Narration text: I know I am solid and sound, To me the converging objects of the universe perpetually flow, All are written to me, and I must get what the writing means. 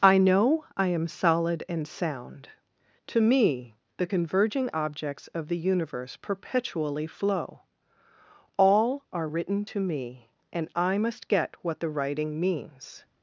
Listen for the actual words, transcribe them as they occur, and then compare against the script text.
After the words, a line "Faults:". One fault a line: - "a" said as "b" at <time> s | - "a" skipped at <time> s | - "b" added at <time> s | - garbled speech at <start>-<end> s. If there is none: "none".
I know I am solid and sound, To me the converging objects of the universe perpetually flow, All are written to me, and I must get what the writing means.
Faults:
none